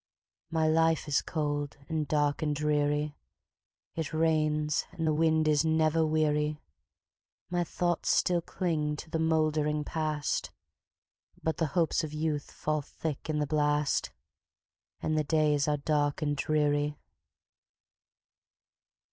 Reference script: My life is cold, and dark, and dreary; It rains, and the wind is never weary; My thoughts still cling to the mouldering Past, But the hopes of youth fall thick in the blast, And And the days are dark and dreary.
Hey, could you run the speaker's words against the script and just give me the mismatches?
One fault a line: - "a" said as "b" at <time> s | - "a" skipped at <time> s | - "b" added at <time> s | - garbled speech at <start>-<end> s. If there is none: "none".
- "And" skipped at 15.2 s